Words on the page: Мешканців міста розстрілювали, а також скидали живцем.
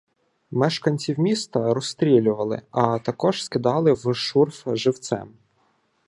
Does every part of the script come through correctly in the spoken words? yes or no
no